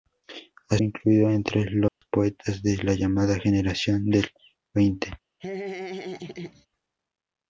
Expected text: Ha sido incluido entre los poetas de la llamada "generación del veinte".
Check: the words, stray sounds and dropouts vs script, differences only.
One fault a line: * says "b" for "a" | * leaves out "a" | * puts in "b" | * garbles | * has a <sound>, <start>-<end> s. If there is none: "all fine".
* leaves out "sido"
* has a dropout, 1.9-2.0 s
* has a laugh, 5.4-6.7 s